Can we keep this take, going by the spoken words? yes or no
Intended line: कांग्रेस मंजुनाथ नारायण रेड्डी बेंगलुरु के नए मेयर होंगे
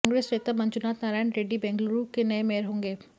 no